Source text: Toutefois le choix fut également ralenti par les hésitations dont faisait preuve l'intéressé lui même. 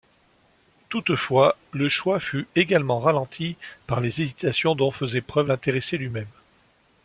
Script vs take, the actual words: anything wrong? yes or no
no